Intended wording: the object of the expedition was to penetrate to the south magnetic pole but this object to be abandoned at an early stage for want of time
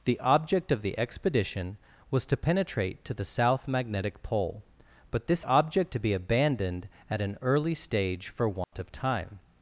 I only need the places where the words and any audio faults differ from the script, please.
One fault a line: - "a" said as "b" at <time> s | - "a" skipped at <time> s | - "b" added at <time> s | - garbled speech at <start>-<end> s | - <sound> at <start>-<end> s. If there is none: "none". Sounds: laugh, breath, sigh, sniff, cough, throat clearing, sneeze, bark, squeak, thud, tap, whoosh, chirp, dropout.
- dropout at 8.6-8.7 s